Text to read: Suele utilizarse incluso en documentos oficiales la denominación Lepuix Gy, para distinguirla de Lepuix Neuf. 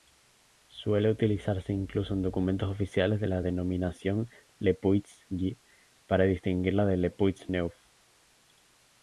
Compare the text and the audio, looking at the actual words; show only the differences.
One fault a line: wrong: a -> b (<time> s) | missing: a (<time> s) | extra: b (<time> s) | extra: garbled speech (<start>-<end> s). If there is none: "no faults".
no faults